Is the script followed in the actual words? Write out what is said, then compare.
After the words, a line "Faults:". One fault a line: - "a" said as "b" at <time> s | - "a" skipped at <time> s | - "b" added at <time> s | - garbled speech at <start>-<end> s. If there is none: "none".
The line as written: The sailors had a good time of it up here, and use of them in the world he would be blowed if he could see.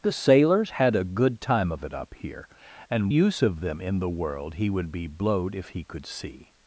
The sailors had a good time of it up here, and use of them in the world he would be blowed if he could see.
Faults:
none